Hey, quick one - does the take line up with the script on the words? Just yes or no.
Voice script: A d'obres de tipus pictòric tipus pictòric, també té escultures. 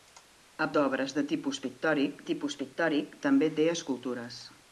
yes